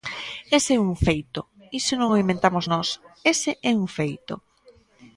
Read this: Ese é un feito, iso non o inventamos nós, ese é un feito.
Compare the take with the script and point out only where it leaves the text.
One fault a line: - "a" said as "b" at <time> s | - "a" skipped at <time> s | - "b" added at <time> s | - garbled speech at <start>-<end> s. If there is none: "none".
none